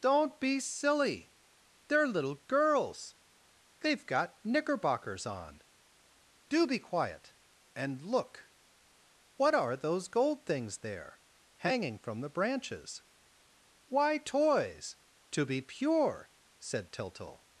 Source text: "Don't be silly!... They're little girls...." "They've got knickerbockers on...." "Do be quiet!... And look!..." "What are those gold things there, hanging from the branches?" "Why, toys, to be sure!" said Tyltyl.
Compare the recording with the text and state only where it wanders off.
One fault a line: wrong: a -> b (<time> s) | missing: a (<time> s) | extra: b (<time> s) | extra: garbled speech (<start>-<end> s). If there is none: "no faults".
wrong: sure -> pure (15.6 s)